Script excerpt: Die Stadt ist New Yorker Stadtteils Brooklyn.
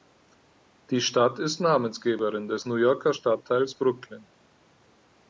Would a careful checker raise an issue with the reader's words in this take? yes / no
yes